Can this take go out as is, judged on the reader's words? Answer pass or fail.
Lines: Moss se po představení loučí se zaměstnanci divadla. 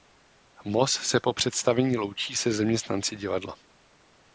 pass